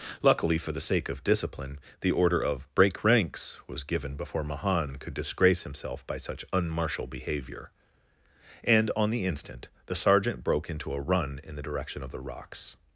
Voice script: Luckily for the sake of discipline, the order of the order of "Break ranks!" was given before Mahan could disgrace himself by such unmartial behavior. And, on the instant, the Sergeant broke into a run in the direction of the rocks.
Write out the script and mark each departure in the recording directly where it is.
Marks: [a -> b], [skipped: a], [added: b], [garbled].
Luckily for the sake of discipline, the order of [skipped: the order of] "Break ranks!" was given before Mahan could disgrace himself by such unmartial behavior. And, on the instant, the Sergeant broke into a run in the direction of the rocks.